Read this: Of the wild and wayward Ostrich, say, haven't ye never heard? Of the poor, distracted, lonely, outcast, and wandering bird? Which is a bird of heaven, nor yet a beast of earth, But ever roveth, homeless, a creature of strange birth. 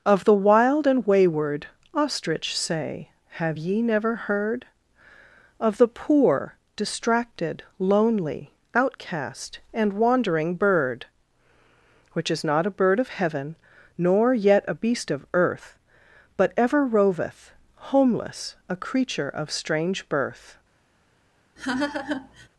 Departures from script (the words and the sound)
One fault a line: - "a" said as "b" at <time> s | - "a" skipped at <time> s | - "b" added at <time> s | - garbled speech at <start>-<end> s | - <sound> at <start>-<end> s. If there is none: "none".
- "haven't" said as "have" at 3.3 s
- "not" added at 12.4 s
- laugh at 21.6-22.5 s